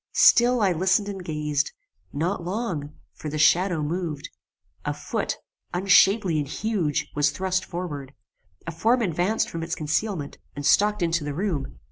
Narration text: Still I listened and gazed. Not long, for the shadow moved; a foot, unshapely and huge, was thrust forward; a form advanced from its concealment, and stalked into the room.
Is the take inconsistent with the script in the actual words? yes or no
no